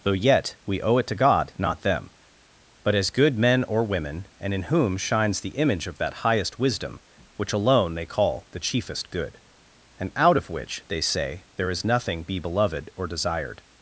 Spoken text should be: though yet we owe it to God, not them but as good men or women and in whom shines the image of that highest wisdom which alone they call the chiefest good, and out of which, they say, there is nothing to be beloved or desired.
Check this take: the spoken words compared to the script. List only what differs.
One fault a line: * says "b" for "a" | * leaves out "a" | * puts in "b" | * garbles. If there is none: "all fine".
* leaves out "to"